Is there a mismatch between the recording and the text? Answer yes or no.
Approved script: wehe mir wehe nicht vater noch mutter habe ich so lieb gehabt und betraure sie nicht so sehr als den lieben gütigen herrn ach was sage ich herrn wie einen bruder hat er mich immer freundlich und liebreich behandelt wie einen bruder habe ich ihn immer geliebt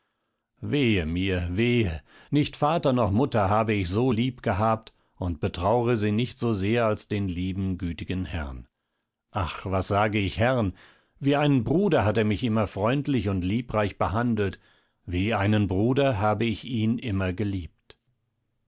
no